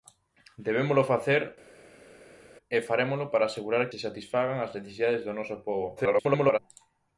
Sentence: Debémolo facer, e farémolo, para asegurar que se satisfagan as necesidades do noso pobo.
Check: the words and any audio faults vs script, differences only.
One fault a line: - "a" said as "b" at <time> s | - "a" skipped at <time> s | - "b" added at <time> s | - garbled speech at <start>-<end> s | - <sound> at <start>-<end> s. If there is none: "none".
- "que" skipped at 3.8 s
- garbled speech at 6.0-6.6 s